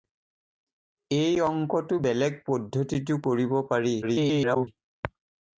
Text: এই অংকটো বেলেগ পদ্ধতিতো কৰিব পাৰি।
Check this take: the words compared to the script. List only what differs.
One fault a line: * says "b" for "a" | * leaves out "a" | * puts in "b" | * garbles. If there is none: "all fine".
* garbles